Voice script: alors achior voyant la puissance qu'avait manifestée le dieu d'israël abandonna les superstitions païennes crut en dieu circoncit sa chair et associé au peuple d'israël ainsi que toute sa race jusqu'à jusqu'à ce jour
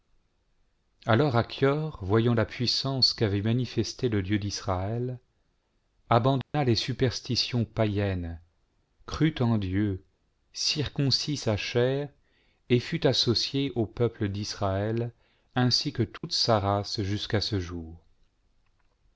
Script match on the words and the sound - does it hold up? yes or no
no